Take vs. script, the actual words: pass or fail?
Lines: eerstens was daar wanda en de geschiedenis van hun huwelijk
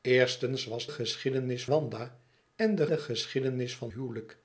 fail